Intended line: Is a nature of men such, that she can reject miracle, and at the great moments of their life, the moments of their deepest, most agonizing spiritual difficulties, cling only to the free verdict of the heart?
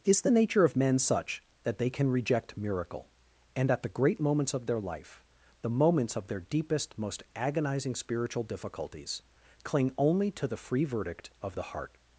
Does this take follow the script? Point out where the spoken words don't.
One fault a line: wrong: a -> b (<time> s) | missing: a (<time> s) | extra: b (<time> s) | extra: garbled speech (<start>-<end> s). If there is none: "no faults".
wrong: a -> the (0.2 s)
wrong: she -> they (1.8 s)